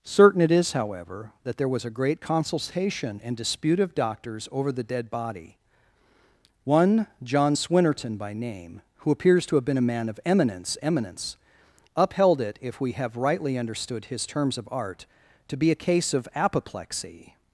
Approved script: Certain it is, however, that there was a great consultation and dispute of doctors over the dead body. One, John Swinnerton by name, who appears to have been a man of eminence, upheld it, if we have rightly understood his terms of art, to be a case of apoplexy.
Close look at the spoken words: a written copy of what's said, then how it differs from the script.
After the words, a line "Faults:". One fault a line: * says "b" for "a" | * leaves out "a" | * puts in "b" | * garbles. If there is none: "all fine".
Certain it is, however, that there was a great consultation and dispute of doctors over the dead body. One, John Swinnerton by name, who appears to have been a man of eminence eminence, upheld it, if we have rightly understood his terms of art, to be a case of apoplexy.
Faults:
* puts in "eminence"